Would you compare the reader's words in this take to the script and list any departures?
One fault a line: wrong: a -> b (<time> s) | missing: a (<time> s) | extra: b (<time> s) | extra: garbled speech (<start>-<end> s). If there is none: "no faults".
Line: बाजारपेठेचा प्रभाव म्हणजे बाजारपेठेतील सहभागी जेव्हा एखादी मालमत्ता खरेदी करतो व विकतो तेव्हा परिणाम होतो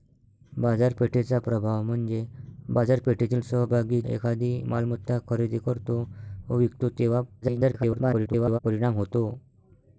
missing: जेव्हा (4.0 s)
extra: garbled speech (7.4-8.6 s)